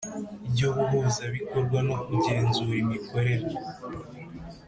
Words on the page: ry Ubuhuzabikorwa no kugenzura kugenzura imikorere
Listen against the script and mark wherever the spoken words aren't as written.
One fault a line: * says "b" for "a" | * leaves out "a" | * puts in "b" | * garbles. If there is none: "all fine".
* leaves out "kugenzura"